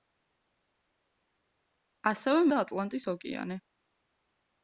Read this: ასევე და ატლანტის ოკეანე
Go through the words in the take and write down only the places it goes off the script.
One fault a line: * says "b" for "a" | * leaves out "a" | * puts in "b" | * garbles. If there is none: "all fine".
all fine